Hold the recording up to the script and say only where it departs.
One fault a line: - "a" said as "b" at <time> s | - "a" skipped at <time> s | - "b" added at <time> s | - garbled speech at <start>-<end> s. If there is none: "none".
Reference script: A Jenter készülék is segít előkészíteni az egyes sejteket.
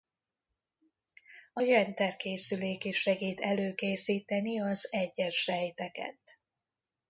none